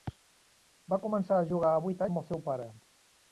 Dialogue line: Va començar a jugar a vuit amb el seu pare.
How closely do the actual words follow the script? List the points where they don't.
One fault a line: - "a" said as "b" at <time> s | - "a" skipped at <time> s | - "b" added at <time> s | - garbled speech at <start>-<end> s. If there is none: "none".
none